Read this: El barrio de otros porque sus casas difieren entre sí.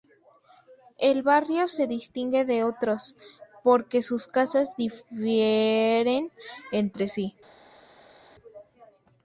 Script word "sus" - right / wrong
right